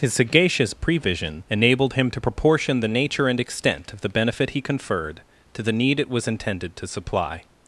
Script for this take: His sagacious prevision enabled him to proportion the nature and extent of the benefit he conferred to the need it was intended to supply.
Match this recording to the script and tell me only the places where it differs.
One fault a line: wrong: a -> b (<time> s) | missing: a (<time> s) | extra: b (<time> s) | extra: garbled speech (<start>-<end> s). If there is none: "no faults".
no faults